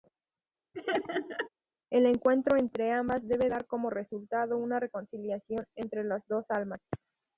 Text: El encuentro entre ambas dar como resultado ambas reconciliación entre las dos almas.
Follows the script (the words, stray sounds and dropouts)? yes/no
no